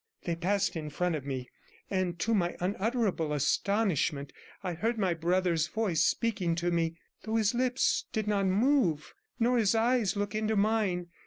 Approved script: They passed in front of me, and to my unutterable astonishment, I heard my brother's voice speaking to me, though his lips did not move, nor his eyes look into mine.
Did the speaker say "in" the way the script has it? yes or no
yes